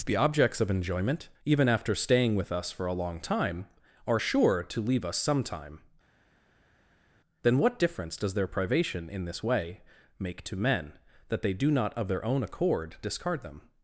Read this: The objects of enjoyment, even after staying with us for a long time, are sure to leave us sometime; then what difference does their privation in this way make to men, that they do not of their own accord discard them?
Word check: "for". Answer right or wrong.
right